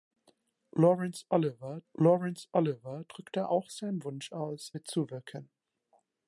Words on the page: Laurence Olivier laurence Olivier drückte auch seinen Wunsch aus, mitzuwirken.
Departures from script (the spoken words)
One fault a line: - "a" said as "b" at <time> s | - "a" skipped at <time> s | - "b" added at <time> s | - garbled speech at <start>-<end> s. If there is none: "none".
none